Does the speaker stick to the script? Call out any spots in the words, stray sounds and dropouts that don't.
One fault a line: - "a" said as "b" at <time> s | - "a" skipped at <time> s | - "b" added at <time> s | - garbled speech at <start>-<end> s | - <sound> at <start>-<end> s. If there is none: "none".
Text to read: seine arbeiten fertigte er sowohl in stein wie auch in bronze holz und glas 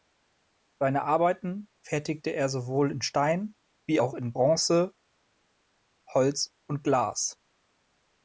none